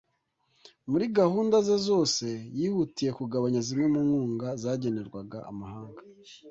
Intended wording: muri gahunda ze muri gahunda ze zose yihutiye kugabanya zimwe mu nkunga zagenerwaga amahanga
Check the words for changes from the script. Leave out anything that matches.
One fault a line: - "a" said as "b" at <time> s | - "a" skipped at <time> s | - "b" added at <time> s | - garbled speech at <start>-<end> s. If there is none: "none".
- "muri gahunda ze" skipped at 1.8 s